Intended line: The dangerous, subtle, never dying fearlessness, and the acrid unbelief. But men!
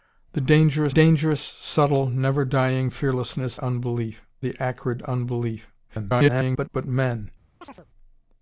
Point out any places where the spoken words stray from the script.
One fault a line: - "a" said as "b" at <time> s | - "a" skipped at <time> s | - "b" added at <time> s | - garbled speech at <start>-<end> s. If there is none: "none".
- "dangerous" added at 0.9 s
- "and" said as "unbelief" at 3.6 s
- garbled speech at 5.9-6.7 s